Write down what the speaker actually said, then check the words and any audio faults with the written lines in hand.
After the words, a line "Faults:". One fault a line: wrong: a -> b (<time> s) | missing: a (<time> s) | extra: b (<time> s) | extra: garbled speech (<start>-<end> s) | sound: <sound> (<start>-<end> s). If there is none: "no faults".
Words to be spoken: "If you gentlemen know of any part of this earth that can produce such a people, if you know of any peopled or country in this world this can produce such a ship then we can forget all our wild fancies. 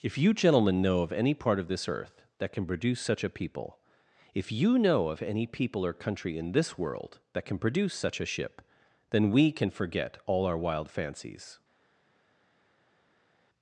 "If you gentlemen know of any part of this earth that can produce such a people, if you know of any people or country in this world that can produce such a ship then we can forget all our wild fancies.
Faults:
wrong: peopled -> people (5.5 s)
wrong: this -> that (7.3 s)